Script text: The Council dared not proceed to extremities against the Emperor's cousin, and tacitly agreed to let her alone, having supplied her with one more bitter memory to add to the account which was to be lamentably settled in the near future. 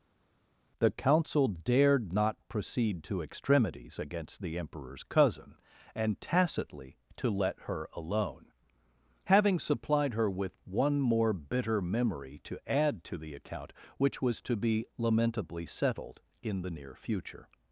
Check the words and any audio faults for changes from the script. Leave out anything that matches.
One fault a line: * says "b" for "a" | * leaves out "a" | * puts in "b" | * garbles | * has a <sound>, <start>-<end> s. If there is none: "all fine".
* leaves out "agreed"